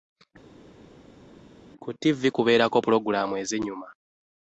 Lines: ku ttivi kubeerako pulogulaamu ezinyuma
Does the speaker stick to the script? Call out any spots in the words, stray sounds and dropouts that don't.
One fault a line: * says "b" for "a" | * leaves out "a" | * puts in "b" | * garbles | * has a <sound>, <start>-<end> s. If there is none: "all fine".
all fine